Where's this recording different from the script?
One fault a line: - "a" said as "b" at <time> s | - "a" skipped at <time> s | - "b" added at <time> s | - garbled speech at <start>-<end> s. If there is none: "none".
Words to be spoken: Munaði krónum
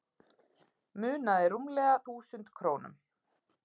- "rúmlega þúsund" added at 1.5 s